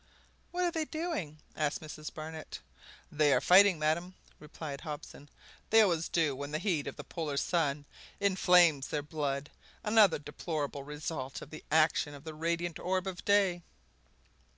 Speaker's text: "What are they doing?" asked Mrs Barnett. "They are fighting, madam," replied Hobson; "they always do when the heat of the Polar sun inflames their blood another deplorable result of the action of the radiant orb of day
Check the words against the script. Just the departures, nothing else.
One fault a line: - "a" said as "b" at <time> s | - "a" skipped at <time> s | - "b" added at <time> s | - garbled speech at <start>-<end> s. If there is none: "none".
none